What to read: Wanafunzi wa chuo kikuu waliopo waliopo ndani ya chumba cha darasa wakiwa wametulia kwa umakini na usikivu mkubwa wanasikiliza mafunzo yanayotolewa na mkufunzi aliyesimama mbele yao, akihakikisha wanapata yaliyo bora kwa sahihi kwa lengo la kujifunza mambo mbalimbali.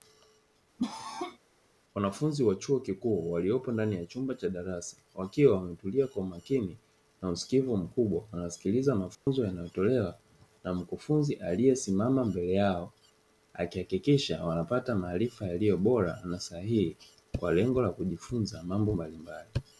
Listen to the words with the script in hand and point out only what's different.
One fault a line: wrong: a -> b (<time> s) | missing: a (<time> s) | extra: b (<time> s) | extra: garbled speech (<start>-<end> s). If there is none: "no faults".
missing: waliopo (3.7 s)
extra: maarifa (15.0 s)
wrong: kwa -> na (16.2 s)